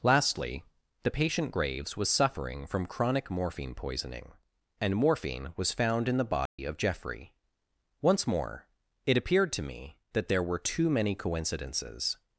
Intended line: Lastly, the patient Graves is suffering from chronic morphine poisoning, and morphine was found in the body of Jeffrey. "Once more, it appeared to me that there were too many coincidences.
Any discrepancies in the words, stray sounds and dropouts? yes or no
yes